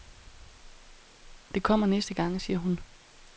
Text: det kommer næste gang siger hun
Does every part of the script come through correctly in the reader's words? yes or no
yes